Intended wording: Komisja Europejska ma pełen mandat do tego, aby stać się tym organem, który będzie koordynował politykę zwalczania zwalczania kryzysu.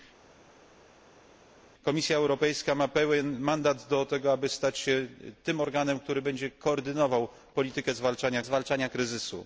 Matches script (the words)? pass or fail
pass